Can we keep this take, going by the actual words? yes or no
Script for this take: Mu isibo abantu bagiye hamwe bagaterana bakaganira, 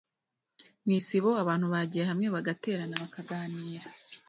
yes